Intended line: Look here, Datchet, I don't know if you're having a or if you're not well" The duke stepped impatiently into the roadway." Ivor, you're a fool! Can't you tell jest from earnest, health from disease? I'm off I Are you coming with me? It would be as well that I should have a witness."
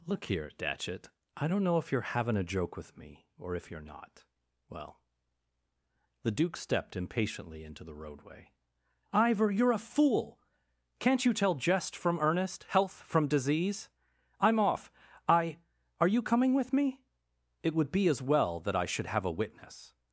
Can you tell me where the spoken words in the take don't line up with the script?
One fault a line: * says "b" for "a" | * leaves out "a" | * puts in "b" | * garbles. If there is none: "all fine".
* puts in "joke with me"